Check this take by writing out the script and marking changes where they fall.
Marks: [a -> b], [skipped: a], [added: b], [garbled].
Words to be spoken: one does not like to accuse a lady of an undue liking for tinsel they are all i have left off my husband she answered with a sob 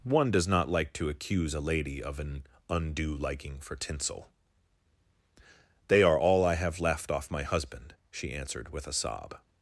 one does not like to accuse a lady of an undue liking for tinsel they are all i have left off my husband she answered with a sob